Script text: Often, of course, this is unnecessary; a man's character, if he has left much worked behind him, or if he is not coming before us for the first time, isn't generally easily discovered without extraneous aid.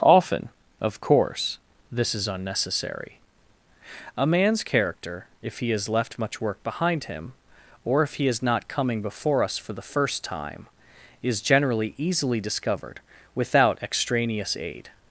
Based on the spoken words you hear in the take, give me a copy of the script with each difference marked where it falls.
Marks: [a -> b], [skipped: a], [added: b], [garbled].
Often, of course, this is unnecessary; a man's character, if he has left much [worked -> work] behind him, or if he is not coming before us for the first time, [isn't -> is] generally easily discovered without extraneous aid.